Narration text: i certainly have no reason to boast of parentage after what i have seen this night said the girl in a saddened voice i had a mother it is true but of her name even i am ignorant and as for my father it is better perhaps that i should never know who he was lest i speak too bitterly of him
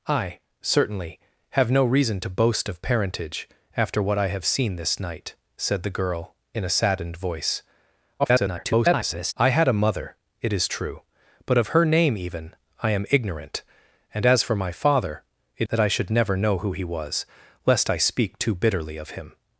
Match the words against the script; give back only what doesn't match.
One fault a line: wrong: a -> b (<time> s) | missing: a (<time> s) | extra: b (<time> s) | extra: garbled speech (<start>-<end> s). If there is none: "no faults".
extra: garbled speech (8.2-9.3 s)
missing: is better perhaps (15.7 s)